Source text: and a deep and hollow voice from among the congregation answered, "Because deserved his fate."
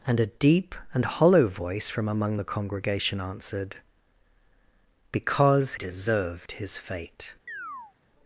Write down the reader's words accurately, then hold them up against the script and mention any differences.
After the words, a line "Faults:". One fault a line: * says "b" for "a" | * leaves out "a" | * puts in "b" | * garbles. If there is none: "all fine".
and a deep and hollow voice from among the congregation answered, "Because deserved his fate."
Faults:
all fine